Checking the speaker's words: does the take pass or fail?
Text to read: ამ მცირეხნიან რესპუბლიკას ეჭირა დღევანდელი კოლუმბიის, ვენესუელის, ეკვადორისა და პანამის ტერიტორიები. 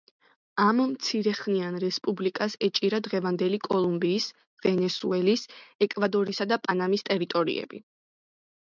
pass